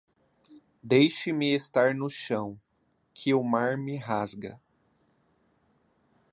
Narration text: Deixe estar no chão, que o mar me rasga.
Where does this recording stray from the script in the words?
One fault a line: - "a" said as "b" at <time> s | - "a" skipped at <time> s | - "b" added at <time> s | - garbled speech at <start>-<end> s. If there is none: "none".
- "me" added at 1.3 s